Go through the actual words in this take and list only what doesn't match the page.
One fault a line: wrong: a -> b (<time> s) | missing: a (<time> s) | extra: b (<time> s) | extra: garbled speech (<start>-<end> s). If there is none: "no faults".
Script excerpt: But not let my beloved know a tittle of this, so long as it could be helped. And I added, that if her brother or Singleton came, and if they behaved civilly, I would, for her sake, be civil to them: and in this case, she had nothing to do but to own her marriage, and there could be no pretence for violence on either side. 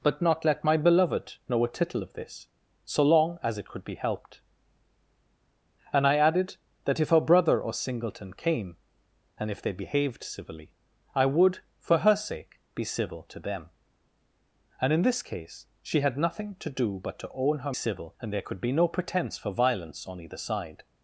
wrong: marriage -> civil (17.7 s)